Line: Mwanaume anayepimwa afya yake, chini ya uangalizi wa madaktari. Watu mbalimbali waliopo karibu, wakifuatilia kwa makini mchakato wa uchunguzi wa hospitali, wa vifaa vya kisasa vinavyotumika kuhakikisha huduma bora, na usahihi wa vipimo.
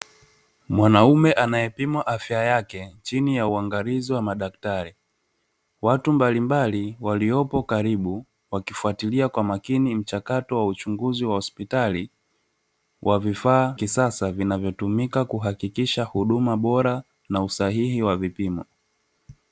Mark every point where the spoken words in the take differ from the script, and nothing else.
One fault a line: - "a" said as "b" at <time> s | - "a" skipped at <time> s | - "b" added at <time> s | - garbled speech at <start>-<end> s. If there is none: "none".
- "vya" skipped at 13.8 s